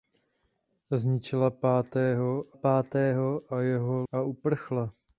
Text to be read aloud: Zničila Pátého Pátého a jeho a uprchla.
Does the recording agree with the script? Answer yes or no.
yes